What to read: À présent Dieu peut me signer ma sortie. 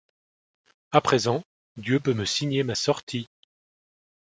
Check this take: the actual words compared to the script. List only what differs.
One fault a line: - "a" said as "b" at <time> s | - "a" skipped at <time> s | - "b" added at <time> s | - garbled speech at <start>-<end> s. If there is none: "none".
none